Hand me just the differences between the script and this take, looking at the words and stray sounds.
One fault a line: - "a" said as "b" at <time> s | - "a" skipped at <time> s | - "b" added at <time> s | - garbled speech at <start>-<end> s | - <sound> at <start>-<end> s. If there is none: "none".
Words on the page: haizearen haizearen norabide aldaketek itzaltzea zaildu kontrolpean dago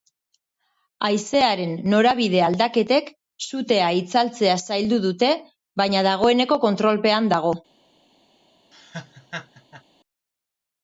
- "haizearen" skipped at 1.8 s
- "sutea" added at 3.5 s
- "dute baina dagoeneko" added at 5.1 s
- laugh at 8.7-9.8 s